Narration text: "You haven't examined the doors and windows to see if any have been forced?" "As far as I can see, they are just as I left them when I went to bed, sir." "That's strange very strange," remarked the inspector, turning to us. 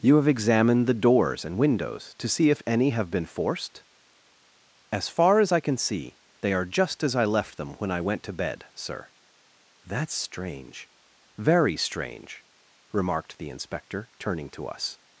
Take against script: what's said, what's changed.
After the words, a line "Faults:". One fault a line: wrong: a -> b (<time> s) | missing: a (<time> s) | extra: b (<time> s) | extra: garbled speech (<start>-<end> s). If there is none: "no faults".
"You have examined the doors and windows to see if any have been forced?" "As far as I can see, they are just as I left them when I went to bed, sir." "That's strange very strange," remarked the inspector, turning to us.
Faults:
wrong: haven't -> have (0.2 s)